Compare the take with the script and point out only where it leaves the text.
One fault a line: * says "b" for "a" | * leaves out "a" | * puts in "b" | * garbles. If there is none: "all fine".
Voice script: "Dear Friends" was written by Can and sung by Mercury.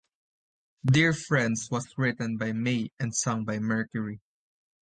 * says "May" for "Can"